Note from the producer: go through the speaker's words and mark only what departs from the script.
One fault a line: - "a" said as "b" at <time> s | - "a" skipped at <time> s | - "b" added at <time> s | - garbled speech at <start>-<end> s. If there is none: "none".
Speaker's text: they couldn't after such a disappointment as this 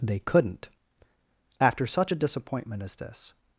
none